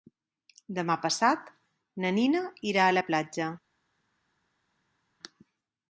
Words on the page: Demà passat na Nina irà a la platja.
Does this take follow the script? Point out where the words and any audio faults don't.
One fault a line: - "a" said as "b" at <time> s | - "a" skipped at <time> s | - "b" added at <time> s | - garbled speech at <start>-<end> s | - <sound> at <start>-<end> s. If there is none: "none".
none